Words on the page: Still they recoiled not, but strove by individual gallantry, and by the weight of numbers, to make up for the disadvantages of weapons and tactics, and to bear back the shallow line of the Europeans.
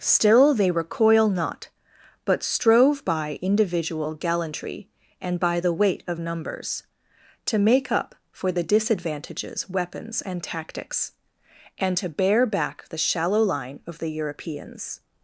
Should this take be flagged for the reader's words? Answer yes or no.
yes